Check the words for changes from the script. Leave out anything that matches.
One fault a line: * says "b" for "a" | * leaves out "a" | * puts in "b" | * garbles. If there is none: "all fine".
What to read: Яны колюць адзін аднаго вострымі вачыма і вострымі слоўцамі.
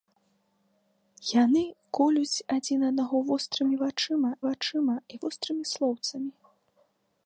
* puts in "вачыма"